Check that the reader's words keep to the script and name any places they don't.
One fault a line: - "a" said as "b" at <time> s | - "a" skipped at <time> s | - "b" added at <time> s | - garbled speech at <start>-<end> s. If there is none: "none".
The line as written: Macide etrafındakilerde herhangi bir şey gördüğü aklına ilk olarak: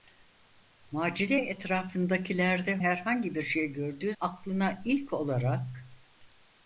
none